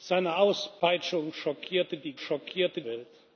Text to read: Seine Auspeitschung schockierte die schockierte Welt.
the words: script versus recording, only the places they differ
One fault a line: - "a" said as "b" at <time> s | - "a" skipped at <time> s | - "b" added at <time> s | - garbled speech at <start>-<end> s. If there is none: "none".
none